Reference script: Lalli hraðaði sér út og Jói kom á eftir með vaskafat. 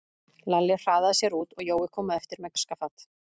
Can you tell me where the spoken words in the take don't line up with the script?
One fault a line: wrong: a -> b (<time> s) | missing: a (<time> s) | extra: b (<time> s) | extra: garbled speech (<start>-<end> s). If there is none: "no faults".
no faults